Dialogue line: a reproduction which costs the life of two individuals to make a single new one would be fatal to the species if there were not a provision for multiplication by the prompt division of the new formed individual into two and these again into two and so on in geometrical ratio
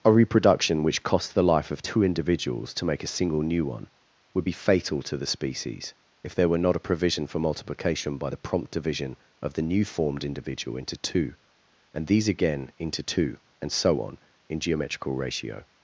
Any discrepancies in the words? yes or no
no